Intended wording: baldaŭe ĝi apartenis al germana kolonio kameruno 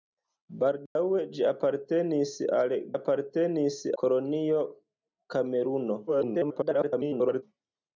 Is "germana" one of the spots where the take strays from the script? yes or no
yes